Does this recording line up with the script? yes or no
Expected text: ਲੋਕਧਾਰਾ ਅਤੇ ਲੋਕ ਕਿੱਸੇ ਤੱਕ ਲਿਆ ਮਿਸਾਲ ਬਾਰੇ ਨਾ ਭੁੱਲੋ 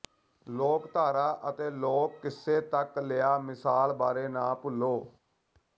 yes